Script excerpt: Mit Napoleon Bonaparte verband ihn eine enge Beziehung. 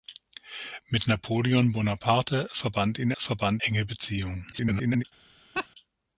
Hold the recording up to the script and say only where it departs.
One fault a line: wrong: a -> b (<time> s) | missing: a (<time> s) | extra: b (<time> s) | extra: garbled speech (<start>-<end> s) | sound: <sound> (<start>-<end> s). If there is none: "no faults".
wrong: eine -> verband (3.2 s)
extra: garbled speech (4.5-5.0 s)
sound: laugh (5.5-5.7 s)